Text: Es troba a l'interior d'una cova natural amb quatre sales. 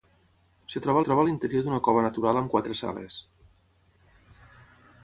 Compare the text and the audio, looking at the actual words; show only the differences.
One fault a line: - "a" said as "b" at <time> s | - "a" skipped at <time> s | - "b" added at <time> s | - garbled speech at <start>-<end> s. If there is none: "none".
- "troba" added at 1.1 s